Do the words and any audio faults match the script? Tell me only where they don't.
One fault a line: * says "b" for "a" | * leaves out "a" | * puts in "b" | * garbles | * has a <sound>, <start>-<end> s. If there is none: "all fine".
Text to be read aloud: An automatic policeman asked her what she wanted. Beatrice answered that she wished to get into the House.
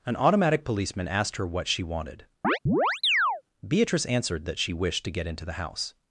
* has a chirp, 2.4-3.4 s